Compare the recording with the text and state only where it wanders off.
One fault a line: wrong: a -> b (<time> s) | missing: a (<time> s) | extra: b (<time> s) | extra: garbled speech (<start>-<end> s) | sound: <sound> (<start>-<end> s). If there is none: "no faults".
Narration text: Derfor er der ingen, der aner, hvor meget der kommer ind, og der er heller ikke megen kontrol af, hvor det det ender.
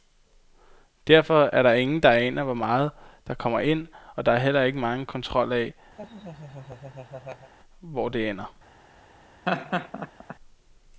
sound: laugh (6.0-7.5 s)
missing: det (8.3 s)
sound: laugh (9.5-10.4 s)